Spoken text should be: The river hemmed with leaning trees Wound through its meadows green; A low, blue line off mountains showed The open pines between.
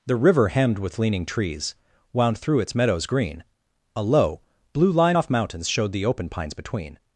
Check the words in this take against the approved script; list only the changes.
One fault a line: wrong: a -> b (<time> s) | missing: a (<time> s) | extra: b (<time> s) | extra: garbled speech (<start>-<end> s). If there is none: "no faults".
no faults